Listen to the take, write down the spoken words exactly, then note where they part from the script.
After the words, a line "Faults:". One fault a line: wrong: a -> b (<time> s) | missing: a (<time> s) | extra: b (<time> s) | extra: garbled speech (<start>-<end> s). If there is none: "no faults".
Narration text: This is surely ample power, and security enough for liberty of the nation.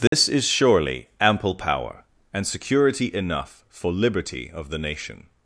This is surely ample power, and security enough for liberty of the nation.
Faults:
no faults